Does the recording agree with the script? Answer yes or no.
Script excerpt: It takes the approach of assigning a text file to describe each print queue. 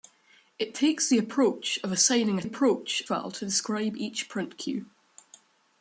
no